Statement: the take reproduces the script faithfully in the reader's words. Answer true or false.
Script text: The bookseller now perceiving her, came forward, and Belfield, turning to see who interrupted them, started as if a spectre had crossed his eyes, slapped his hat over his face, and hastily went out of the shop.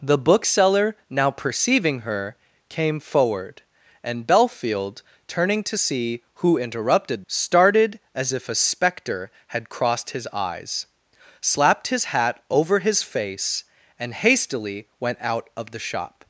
false